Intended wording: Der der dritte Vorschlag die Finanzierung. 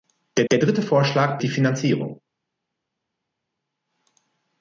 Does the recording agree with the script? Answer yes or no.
yes